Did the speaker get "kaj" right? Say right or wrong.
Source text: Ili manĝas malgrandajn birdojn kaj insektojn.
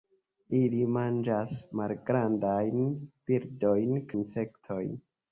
wrong